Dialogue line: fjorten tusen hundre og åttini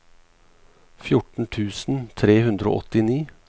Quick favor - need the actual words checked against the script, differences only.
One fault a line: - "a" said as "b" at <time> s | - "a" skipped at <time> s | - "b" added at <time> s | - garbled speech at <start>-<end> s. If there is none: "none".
- "tre" added at 2.2 s